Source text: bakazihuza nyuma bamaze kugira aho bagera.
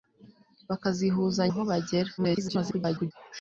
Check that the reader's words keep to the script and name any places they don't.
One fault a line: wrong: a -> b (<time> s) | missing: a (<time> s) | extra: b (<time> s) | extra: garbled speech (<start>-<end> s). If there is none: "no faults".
missing: nyuma bamaze kugira (1.4 s)
extra: garbled speech (2.2-3.1 s)